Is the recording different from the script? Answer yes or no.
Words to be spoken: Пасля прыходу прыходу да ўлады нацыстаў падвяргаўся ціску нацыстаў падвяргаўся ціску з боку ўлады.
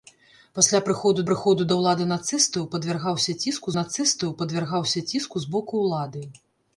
no